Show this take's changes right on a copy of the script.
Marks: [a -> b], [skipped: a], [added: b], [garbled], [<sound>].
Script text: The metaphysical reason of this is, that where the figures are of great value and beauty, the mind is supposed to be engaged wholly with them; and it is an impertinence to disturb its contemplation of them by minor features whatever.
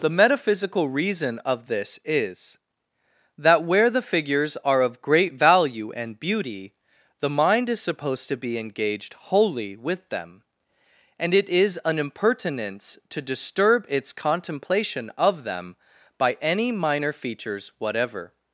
The metaphysical reason of this is, that where the figures are of great value and beauty, the mind is supposed to be engaged wholly with them; and it is an impertinence to disturb its contemplation of them by [added: any] minor features whatever.